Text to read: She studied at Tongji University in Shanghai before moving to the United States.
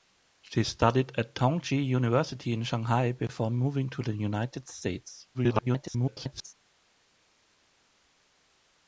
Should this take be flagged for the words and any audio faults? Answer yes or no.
yes